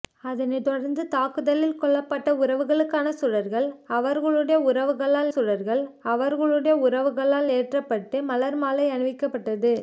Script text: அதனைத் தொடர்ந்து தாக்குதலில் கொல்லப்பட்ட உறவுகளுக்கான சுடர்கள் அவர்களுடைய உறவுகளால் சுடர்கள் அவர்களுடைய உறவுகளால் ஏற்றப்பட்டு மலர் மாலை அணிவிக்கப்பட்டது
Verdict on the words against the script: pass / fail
pass